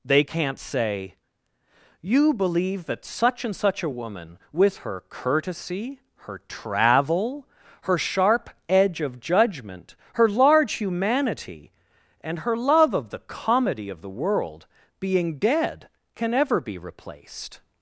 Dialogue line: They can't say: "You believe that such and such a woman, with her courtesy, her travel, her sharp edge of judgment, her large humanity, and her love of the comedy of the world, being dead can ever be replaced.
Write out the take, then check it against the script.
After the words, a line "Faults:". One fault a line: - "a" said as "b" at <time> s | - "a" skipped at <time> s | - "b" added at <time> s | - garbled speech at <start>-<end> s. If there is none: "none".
They can't say: "You believe that such and such a woman, with her courtesy, her travel, her sharp edge of judgment, her large humanity, and her love of the comedy of the world, being dead can ever be replaced.
Faults:
none